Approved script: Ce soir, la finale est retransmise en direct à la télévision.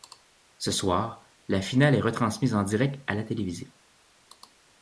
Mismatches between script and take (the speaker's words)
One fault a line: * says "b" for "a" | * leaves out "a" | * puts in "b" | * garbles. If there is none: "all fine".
all fine